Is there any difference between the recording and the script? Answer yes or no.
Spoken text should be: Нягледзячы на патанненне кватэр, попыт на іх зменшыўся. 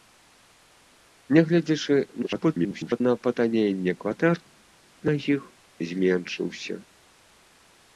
yes